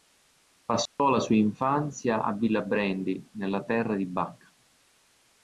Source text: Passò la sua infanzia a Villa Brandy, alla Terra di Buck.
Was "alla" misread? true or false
true